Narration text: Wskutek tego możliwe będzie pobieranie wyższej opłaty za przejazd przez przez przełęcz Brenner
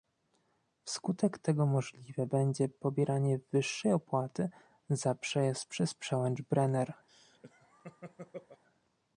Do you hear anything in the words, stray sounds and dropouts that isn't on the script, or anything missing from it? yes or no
yes